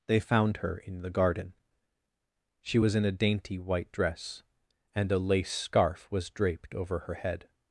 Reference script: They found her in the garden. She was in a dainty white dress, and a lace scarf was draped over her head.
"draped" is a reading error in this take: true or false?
false